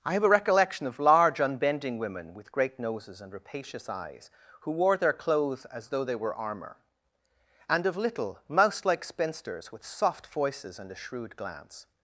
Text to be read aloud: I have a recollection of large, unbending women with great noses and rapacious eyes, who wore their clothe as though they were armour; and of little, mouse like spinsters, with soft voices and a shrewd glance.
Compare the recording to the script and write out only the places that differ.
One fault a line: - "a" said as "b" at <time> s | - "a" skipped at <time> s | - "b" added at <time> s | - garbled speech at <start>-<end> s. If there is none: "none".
- "clothe" said as "clothes" at 5.1 s